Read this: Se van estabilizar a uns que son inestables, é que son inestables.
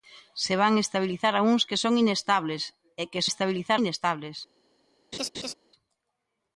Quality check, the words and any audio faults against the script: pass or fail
fail